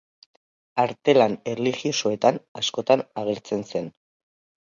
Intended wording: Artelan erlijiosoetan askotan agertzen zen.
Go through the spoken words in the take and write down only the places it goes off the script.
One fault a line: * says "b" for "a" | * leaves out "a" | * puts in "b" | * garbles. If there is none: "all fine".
all fine